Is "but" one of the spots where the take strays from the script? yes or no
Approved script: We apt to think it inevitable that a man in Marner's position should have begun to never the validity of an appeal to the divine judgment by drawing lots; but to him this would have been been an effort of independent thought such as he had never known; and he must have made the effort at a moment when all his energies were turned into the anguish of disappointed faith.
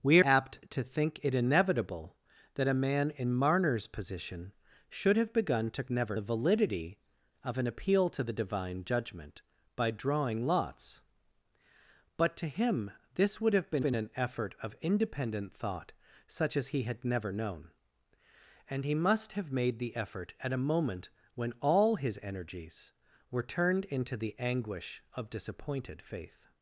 no